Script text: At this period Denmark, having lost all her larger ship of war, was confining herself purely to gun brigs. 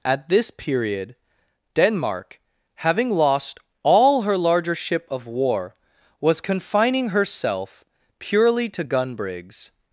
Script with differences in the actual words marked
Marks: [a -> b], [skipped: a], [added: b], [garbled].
At this period Denmark, having lost all her larger ship of war, was confining herself purely to gun brigs.